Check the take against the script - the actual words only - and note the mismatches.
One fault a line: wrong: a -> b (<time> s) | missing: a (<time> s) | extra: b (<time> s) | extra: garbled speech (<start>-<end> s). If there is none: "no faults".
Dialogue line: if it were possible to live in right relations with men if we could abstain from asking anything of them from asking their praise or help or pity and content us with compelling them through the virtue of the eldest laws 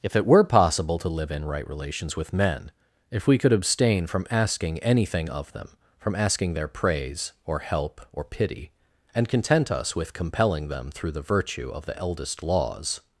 no faults